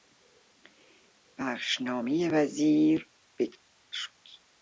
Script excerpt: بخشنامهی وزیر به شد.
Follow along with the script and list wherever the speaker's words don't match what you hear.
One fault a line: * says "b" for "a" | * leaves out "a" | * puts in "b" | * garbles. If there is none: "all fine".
all fine